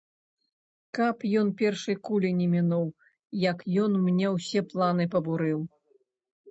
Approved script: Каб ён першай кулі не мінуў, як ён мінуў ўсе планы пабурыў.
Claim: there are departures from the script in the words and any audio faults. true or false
true